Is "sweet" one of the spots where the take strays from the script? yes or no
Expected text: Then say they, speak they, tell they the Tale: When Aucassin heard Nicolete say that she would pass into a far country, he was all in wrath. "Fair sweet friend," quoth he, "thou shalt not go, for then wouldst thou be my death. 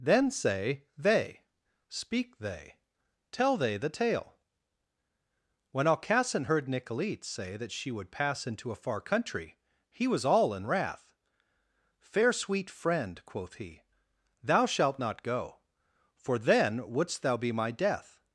no